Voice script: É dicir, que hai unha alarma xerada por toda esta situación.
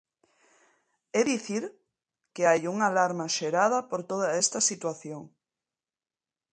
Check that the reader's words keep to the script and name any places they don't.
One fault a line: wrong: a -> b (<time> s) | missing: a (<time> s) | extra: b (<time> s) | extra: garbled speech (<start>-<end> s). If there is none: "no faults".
no faults